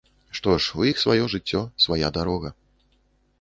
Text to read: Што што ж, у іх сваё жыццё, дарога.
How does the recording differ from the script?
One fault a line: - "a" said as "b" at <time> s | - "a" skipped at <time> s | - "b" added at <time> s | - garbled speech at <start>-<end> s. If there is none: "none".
- "што" skipped at 0.5 s
- "свая" added at 1.9 s